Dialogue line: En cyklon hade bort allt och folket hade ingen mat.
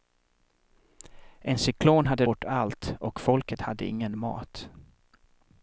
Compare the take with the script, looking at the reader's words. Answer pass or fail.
pass